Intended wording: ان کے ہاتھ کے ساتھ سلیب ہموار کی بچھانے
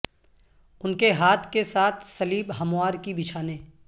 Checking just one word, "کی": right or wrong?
right